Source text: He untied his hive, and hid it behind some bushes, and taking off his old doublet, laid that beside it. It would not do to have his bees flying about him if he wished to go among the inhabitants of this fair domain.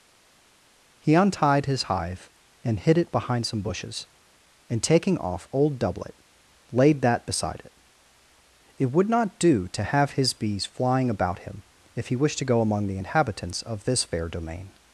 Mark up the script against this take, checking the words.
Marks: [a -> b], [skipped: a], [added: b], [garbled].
He untied his hive, and hid it behind some bushes, and taking off [skipped: his] old doublet, laid that beside it. It would not do to have his bees flying about him if he wished to go among the inhabitants of this fair domain.